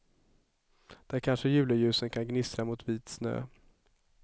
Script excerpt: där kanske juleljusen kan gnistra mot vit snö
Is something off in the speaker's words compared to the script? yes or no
no